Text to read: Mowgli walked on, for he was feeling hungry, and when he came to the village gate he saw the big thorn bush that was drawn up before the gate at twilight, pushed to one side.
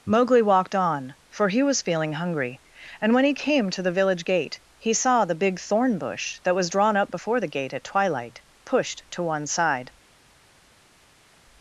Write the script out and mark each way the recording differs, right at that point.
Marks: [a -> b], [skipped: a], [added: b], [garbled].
Mowgli walked on, for he was feeling hungry, and when he came to the village gate he saw the big thorn bush that was drawn up before the gate at twilight, pushed to one side.